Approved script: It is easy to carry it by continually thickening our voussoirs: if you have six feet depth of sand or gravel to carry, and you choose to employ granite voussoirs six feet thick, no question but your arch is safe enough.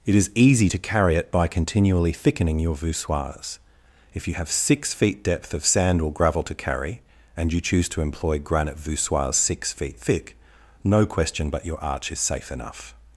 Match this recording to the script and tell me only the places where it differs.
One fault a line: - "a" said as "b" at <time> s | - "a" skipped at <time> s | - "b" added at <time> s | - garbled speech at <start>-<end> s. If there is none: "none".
- "our" said as "your" at 2.6 s